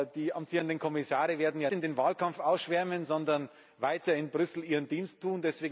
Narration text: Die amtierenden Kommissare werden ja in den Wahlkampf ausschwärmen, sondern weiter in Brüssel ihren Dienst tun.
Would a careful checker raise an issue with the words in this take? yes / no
no